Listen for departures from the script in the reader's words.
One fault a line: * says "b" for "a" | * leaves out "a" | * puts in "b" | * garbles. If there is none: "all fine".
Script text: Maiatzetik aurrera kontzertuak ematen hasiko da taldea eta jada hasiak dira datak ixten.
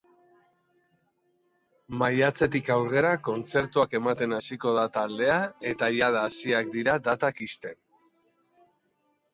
all fine